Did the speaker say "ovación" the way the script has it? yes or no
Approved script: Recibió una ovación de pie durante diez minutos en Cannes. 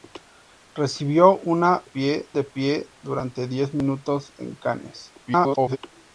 no